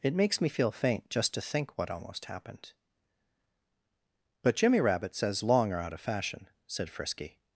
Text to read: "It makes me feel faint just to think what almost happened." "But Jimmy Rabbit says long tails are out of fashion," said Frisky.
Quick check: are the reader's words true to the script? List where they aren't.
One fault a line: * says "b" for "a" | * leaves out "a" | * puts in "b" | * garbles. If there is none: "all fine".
* leaves out "tails"